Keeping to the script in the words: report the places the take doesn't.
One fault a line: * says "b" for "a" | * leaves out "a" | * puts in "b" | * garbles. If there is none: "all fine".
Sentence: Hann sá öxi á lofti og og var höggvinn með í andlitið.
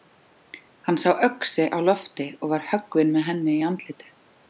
* leaves out "og"
* puts in "henni"